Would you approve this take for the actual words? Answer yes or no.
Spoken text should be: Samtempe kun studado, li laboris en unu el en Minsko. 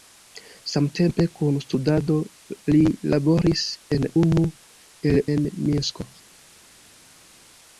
yes